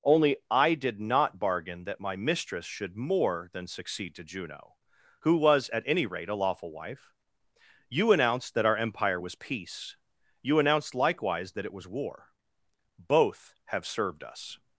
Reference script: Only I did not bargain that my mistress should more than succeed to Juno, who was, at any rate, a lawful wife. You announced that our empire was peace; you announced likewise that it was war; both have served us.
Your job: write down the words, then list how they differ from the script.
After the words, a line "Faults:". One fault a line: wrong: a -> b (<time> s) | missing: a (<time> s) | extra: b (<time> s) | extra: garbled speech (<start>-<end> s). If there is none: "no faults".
Only I did not bargain that my mistress should more than succeed to Juno, who was, at any rate, a lawful wife. You announced that our empire was peace; you announced likewise that it was war; both have served us.
Faults:
no faults